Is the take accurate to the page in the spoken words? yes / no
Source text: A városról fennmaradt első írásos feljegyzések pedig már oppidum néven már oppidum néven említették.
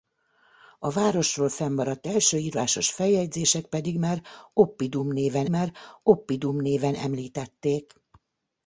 yes